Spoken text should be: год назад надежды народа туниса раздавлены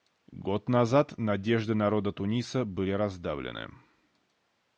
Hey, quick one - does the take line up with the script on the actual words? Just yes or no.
no